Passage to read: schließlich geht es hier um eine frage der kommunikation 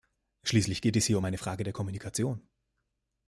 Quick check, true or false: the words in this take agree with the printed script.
true